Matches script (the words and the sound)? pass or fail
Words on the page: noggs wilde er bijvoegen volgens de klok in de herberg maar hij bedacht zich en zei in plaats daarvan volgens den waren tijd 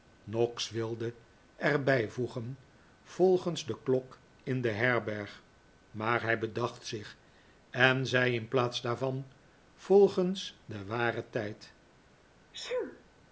fail